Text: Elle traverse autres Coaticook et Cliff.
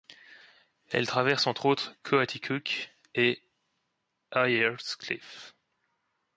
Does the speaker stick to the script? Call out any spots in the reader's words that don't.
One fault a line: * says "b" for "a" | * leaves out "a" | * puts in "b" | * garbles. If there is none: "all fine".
* puts in "entre"
* puts in "Ayer's"